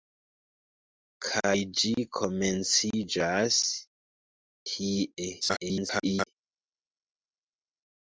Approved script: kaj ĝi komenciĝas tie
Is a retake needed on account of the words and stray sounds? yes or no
yes